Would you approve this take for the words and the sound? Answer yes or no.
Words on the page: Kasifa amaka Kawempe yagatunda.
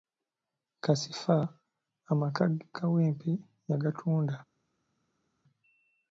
yes